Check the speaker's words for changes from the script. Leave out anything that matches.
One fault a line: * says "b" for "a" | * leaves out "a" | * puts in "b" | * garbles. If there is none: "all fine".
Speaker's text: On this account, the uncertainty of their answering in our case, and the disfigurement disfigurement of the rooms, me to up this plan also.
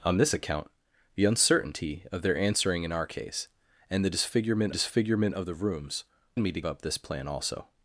all fine